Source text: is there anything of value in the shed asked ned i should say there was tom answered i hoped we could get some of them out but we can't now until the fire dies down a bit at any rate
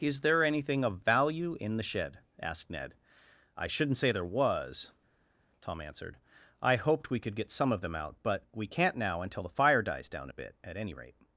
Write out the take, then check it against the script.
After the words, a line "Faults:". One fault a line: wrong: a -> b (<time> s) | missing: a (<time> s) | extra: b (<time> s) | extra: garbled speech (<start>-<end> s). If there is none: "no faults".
is there anything of value in the shed asked ned i shouldn't say there was tom answered i hoped we could get some of them out but we can't now until the fire dies down a bit at any rate
Faults:
wrong: should -> shouldn't (3.7 s)